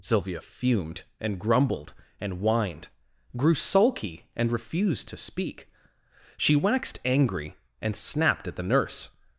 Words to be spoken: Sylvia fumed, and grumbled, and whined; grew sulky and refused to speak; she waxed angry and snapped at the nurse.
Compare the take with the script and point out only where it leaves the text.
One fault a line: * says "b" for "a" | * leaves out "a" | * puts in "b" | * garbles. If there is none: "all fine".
all fine